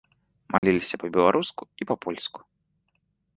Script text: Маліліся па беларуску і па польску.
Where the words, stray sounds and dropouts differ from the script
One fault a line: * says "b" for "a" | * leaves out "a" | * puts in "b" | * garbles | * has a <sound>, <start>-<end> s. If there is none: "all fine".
* has a dropout, 0.6-0.6 s